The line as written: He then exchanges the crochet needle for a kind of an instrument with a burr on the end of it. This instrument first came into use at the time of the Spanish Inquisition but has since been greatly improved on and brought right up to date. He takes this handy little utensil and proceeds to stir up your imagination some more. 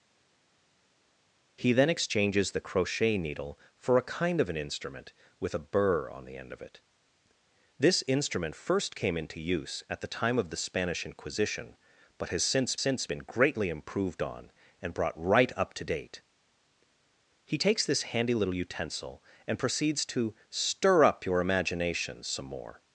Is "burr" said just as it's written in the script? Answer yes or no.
yes